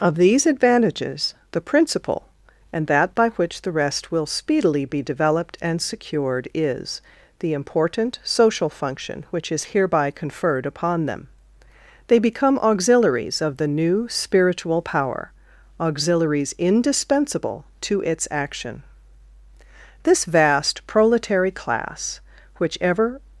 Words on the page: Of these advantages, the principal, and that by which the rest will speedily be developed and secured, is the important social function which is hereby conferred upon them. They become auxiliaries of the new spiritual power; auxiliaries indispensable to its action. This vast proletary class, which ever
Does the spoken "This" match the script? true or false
true